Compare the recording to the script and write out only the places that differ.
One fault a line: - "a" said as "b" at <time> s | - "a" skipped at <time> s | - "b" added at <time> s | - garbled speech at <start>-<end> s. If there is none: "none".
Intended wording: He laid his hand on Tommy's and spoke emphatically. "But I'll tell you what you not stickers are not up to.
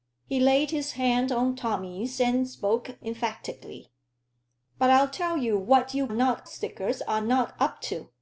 none